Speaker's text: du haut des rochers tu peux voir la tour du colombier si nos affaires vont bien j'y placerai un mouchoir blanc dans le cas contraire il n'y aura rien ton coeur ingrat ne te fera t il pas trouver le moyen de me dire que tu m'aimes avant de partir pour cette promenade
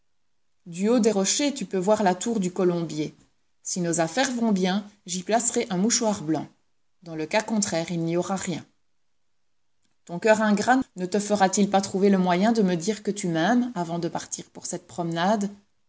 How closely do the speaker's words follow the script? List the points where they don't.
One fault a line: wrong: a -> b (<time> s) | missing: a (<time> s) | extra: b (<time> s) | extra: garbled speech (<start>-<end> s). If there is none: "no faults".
no faults